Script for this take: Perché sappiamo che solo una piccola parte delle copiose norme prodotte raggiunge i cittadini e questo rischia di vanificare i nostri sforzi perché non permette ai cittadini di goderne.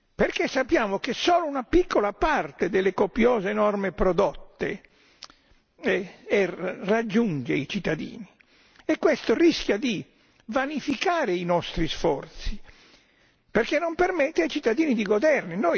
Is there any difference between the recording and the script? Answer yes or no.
no